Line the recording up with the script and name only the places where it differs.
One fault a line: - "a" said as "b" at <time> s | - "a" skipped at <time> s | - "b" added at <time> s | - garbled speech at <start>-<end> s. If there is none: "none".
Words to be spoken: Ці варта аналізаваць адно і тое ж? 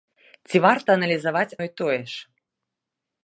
- "адно" skipped at 1.6 s